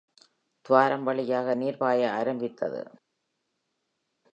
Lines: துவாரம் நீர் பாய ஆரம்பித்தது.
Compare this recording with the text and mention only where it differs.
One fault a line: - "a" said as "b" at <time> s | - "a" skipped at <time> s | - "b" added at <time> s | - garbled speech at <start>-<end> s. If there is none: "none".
- "வழியாக" added at 1.0 s